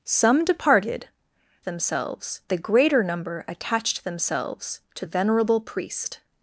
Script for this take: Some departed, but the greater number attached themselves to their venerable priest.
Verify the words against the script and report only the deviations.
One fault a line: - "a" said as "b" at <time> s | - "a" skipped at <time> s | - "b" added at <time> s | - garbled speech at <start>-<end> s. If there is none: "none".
- "but" said as "themselves" at 1.6 s
- "their" skipped at 5.1 s